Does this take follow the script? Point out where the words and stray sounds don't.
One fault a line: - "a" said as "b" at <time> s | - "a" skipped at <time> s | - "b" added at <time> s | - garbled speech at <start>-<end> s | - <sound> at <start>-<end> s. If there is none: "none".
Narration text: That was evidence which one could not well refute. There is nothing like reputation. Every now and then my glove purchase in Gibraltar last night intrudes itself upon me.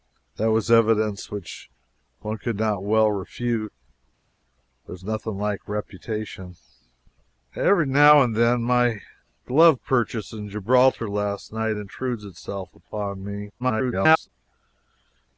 - garbled speech at 13.6-14.3 s